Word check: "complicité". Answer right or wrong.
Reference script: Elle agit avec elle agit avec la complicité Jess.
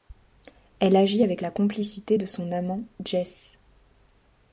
wrong